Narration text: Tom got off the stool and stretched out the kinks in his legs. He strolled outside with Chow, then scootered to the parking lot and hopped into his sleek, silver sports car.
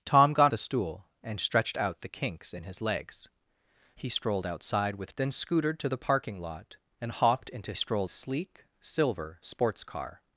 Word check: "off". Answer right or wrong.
wrong